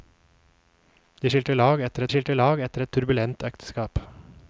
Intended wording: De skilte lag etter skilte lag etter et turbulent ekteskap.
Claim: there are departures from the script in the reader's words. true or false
false